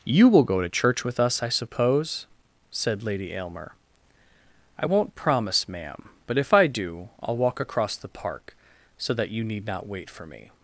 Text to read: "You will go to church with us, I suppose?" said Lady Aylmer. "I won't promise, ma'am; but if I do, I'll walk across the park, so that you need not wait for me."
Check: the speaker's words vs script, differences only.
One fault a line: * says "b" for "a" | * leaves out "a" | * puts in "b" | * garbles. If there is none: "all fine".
all fine